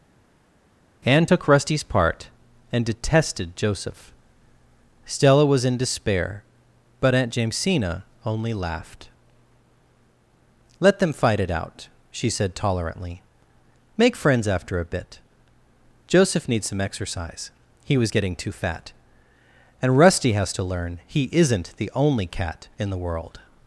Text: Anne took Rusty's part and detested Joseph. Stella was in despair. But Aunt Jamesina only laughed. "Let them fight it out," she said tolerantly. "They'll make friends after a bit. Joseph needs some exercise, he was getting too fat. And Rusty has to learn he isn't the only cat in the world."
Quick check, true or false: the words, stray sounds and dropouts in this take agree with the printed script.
false